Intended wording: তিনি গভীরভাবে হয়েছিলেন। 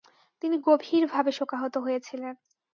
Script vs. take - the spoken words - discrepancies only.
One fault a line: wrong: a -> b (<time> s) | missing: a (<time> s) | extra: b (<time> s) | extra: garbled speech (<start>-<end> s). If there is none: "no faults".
extra: শোকাহত (1.4 s)